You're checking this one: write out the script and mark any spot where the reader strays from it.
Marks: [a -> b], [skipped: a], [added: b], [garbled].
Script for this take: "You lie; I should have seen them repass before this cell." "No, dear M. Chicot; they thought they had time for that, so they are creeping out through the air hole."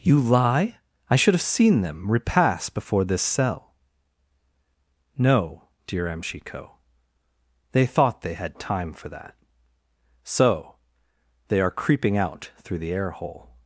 "You lie; I should have seen them repass before this cell." "No, dear M. Chicot; they thought they had time for that, so they are creeping out through the air hole."